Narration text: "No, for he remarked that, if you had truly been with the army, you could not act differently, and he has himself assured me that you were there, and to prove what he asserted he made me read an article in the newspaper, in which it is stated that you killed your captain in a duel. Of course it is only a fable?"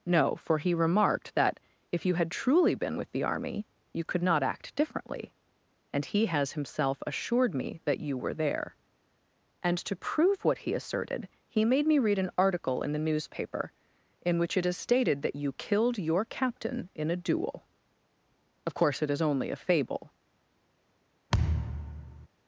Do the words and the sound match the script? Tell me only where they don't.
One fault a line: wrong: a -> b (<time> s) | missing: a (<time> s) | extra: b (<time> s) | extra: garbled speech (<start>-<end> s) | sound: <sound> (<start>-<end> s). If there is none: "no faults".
sound: thud (21.3-22.3 s)